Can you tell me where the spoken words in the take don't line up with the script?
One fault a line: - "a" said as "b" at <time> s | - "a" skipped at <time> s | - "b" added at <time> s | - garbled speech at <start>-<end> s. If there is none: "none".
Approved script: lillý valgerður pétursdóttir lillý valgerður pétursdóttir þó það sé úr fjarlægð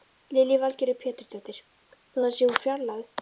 - "lillý valgerður pétursdóttir" skipped at 1.6 s